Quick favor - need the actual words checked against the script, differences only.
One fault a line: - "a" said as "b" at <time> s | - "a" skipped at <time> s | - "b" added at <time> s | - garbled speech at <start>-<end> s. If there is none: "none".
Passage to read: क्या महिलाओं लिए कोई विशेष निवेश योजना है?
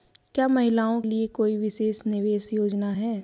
none